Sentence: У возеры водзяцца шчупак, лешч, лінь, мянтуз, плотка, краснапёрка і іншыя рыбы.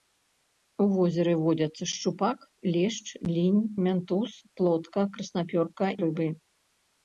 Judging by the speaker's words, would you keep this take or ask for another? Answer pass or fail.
fail